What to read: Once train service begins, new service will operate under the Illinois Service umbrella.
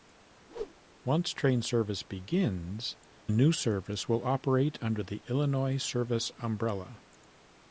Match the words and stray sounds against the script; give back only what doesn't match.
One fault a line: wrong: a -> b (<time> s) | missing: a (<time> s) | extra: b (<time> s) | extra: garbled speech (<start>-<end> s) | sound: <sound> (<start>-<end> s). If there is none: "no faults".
sound: whoosh (0.5-0.7 s)